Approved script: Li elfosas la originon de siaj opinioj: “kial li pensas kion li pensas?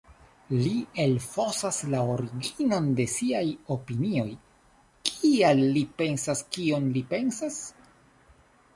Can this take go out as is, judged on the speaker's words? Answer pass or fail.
pass